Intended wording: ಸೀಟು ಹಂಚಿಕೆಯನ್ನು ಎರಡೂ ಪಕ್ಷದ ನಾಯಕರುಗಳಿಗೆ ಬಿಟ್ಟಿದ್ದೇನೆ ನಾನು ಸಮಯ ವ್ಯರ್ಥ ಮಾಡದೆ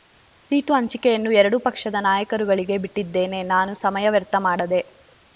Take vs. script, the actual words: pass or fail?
pass